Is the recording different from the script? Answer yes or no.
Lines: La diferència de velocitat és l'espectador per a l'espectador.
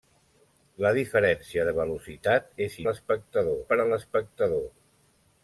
no